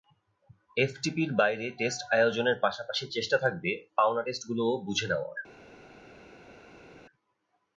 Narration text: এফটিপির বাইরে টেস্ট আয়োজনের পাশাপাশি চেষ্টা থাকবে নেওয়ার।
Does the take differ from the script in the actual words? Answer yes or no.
yes